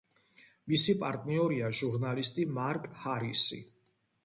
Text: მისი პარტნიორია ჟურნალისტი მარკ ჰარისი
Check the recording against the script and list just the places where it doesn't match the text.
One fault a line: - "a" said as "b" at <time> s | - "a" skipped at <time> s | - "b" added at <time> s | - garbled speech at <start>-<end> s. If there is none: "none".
none